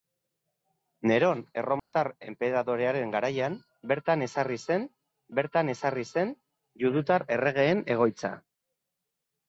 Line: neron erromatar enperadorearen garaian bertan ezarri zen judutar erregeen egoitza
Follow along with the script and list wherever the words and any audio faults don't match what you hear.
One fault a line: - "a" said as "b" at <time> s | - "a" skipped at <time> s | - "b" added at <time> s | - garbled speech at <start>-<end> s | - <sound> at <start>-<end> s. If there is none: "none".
- dropout at 1.8-1.9 s
- "bertan ezarri zen" added at 5.4 s